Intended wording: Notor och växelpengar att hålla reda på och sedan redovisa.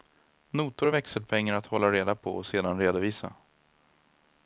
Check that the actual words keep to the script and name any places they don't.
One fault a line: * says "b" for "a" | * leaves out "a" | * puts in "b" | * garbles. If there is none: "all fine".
all fine